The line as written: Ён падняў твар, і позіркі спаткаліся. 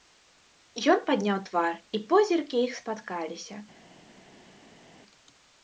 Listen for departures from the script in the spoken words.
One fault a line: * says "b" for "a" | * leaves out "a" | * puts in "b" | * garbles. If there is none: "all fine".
* puts in "іх"